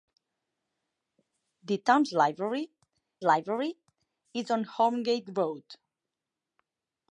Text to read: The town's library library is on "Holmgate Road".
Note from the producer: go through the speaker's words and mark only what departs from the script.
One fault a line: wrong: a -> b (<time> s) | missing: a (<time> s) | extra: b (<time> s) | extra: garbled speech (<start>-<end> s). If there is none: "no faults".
no faults